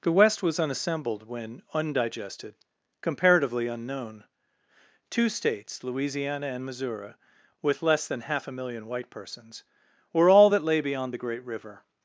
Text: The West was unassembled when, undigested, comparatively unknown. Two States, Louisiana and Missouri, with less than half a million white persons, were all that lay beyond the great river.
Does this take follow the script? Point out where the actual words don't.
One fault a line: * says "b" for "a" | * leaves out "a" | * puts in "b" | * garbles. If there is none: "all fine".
all fine